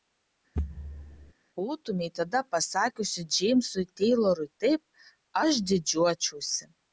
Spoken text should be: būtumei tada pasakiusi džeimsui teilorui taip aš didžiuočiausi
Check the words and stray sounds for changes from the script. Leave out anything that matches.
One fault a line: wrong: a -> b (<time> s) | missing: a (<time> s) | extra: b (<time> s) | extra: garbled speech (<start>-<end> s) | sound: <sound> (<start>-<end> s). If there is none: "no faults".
sound: thud (0.6-1.3 s)